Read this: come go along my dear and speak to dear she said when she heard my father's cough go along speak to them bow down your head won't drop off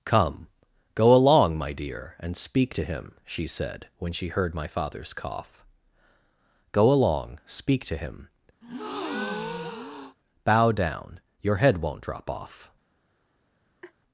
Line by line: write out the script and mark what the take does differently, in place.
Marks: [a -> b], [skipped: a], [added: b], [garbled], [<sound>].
come go along my dear and speak to [dear -> him] she said when she heard my father's cough go along speak to [them -> him] [breath] bow down your head won't drop off [laugh]